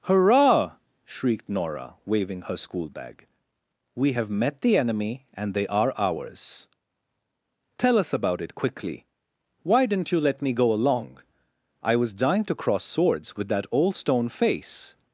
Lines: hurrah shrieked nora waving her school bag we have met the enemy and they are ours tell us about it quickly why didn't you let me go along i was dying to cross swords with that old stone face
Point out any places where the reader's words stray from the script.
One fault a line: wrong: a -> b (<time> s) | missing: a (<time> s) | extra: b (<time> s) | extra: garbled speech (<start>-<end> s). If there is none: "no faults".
no faults